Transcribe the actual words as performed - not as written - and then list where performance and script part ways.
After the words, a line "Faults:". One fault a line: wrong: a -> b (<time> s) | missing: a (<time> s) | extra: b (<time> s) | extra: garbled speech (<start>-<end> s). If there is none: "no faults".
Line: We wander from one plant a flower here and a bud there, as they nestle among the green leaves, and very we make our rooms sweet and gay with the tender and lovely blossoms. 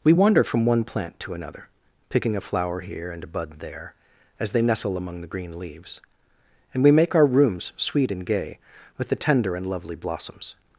We wander from one plant to another picking a flower here and a bud there, as they nestle among the green leaves, and we make our rooms sweet and gay with the tender and lovely blossoms.
Faults:
extra: to another picking (1.2 s)
missing: very (6.8 s)